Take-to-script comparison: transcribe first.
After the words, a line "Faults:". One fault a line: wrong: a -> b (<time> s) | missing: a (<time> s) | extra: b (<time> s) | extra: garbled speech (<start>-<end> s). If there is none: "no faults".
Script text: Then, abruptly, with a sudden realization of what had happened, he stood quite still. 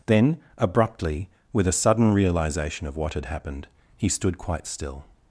Then, abruptly, with a sudden realization of what had happened, he stood quite still.
Faults:
no faults